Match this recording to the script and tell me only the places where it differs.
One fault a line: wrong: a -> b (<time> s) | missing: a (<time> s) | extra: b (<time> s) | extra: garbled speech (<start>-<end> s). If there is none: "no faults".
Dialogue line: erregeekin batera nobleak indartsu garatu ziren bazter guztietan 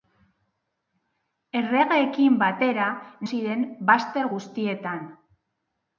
missing: nobleak indartsu garatu (2.9 s)